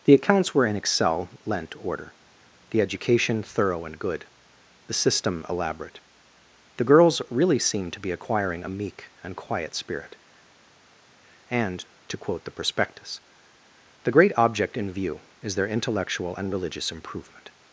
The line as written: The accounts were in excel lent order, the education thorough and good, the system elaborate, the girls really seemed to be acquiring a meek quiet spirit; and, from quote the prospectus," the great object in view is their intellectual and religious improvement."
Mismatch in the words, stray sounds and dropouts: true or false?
true